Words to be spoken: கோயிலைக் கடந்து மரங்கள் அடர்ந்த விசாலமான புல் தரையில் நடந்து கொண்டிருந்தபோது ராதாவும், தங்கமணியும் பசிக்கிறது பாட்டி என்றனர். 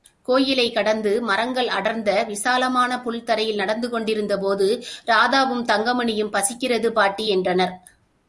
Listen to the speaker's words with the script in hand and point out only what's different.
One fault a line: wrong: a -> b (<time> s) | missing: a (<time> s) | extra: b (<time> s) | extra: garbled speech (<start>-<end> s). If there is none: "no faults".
no faults